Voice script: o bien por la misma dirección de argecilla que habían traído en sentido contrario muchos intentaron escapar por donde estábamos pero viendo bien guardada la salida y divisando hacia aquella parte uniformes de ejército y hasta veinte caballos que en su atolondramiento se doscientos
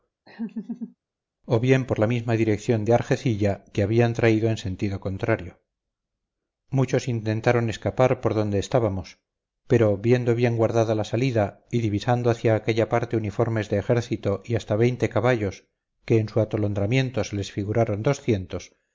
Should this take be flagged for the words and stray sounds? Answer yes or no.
yes